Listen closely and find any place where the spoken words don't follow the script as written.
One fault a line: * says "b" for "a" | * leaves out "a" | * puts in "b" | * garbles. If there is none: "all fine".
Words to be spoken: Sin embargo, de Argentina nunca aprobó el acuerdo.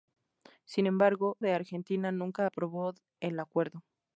all fine